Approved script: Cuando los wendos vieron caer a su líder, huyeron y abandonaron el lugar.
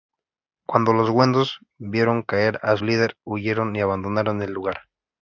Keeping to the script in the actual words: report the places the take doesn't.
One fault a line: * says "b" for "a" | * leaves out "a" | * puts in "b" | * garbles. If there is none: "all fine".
* leaves out "su"